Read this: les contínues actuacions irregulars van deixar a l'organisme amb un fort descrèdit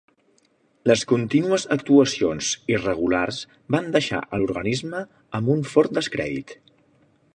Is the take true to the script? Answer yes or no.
yes